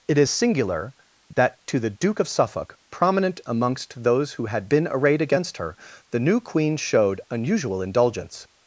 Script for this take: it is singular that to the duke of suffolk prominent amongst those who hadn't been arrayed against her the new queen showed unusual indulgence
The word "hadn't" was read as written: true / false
false